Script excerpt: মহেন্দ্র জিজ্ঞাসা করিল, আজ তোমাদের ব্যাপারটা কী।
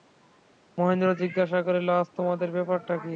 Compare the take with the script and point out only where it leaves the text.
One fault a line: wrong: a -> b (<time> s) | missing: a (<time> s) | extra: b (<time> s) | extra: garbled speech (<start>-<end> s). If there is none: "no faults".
no faults